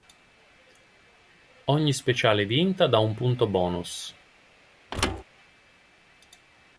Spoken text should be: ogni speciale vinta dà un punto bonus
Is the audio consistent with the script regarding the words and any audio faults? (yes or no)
no